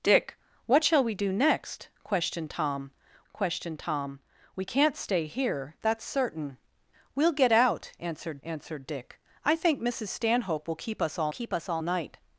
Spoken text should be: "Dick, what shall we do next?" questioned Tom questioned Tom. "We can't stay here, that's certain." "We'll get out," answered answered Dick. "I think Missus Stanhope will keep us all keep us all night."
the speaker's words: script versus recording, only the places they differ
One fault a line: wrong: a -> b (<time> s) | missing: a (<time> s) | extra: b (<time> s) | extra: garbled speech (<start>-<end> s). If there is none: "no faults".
no faults